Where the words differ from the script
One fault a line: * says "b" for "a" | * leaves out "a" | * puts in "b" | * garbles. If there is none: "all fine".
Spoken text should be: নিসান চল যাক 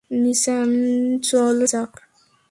all fine